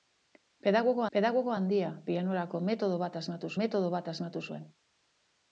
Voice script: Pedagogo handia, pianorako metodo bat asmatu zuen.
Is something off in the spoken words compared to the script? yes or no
yes